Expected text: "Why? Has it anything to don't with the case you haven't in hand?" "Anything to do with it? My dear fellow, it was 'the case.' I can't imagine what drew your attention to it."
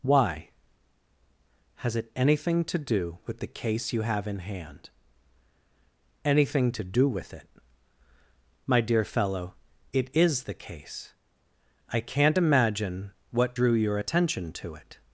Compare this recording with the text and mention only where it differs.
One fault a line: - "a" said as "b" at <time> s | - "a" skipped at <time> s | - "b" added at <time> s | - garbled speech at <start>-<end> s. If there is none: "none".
- "don't" said as "do" at 2.8 s
- "haven't" said as "have" at 4.0 s
- "was" said as "is" at 10.2 s